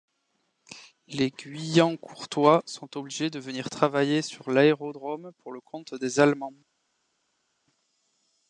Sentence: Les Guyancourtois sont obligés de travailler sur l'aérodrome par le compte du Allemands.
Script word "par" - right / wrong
wrong